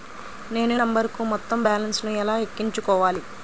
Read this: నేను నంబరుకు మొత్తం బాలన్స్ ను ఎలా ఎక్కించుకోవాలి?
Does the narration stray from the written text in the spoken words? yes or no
no